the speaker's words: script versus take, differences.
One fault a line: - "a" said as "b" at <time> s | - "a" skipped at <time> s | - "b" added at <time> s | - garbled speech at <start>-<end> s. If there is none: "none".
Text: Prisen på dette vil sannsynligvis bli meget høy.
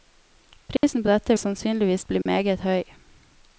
- "vil" skipped at 1.4 s